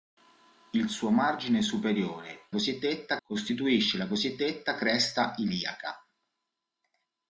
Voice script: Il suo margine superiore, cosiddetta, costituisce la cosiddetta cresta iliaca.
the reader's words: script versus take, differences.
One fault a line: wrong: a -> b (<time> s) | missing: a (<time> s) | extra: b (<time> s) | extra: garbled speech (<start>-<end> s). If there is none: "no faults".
no faults